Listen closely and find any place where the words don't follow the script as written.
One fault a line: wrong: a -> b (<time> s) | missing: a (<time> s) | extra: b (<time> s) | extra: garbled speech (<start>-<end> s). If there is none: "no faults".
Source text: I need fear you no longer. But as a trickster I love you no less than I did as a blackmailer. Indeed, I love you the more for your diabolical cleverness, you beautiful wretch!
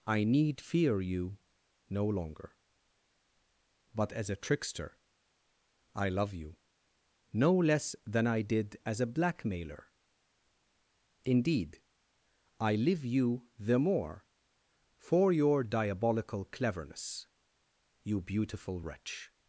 wrong: love -> live (12.8 s)